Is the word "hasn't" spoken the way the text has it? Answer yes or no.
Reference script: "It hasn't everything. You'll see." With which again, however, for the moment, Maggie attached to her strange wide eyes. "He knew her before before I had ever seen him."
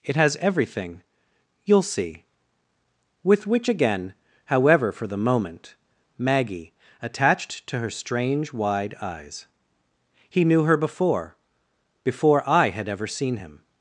no